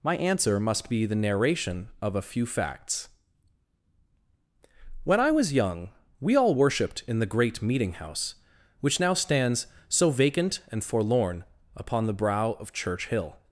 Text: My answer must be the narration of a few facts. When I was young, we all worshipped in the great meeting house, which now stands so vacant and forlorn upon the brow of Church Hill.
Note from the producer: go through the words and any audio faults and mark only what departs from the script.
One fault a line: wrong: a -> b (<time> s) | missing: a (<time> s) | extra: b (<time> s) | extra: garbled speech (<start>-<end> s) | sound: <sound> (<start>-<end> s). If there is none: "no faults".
no faults